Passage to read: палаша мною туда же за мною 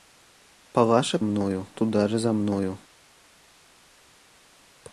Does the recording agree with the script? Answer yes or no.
yes